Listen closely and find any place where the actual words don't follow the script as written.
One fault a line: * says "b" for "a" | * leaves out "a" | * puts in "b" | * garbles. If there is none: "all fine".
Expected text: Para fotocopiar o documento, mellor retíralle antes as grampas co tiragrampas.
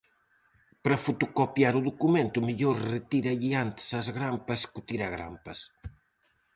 all fine